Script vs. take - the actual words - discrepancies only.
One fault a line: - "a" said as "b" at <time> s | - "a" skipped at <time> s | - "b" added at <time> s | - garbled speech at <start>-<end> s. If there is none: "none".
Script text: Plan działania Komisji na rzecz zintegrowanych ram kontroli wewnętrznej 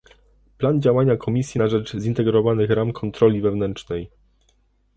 none